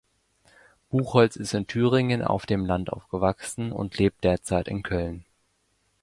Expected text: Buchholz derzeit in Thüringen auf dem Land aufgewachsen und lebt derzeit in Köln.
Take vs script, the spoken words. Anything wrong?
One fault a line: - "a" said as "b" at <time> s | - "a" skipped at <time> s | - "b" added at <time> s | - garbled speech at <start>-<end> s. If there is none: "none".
- "derzeit" said as "ist" at 1.4 s